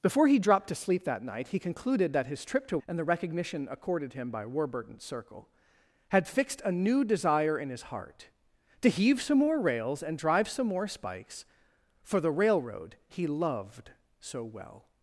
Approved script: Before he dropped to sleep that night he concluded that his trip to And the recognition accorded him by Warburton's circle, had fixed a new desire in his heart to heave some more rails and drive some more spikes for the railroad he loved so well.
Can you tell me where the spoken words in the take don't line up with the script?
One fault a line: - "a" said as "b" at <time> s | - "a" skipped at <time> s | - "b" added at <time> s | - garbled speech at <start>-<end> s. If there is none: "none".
none